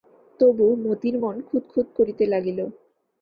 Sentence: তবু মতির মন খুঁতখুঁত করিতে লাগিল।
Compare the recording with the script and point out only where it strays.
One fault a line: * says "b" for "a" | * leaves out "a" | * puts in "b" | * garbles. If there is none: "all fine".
all fine